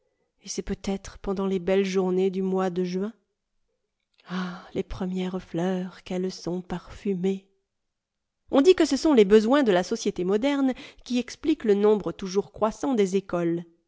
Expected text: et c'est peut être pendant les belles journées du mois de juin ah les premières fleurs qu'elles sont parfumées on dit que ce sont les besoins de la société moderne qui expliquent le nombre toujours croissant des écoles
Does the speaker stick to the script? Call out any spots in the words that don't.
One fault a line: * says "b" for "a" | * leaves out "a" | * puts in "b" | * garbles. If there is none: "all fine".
all fine